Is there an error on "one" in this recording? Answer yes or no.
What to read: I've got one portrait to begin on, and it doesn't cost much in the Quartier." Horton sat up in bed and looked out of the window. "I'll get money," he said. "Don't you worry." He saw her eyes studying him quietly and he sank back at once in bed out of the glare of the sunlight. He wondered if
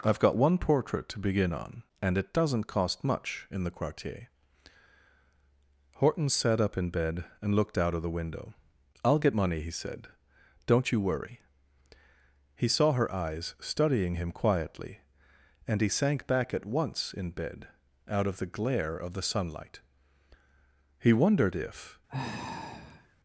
no